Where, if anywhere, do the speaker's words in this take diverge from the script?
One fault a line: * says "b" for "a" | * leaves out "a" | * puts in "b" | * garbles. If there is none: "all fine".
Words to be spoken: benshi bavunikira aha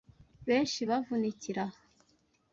all fine